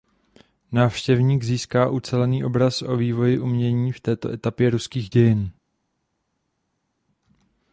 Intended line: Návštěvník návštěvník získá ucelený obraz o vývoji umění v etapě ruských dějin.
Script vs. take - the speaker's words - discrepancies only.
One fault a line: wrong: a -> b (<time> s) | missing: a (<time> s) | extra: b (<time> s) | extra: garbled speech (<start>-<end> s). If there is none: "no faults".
missing: návštěvník (1.4 s)
extra: této (4.0 s)